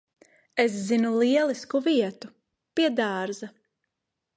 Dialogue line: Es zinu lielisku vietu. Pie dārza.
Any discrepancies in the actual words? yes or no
no